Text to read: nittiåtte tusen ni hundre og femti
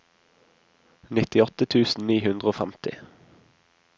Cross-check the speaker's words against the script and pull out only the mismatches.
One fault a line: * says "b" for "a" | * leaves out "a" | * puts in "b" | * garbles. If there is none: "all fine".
all fine